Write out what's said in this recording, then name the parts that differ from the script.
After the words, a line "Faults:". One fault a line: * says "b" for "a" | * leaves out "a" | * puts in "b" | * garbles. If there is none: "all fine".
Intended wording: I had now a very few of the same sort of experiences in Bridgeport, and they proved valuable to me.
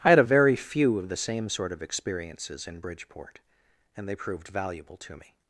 I had a very few of the same sort of experiences in Bridgeport, and they proved valuable to me.
Faults:
* leaves out "now"